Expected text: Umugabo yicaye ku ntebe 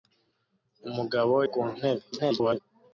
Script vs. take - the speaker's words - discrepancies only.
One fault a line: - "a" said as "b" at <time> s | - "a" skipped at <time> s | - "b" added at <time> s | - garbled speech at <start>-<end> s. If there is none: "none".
- "yicaye" skipped at 1.4 s
- garbled speech at 2.1-2.6 s